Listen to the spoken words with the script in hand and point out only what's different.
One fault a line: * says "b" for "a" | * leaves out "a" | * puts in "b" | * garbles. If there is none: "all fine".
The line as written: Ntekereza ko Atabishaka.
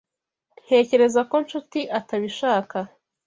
* puts in "Nshuti"